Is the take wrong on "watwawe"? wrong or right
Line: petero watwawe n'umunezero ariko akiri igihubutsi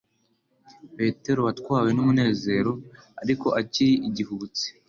right